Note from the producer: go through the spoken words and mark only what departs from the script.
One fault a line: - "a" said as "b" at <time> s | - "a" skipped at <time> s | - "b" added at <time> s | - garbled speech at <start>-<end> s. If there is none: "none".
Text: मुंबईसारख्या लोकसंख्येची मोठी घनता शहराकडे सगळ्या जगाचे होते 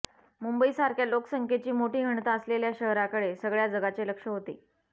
- "असलेल्या" added at 2.3 s
- "लक्ष" added at 4.1 s